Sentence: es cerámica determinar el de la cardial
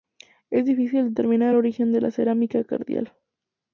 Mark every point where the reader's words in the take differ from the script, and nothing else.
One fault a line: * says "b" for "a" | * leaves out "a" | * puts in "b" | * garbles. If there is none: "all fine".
* says "difícil" for "cerámica"
* puts in "origen"
* puts in "cerámica"